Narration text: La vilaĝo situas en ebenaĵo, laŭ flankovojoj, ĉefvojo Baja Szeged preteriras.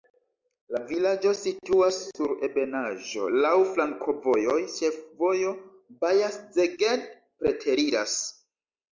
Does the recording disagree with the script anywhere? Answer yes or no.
yes